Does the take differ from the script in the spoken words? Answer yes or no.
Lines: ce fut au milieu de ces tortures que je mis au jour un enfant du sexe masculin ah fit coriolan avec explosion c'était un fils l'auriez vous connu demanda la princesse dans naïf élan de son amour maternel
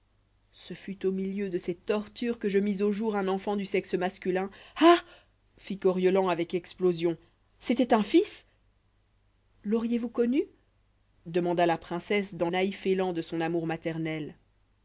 no